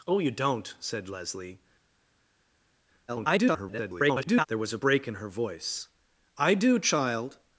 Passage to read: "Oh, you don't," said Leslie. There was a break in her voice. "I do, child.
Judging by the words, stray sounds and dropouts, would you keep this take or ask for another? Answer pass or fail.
fail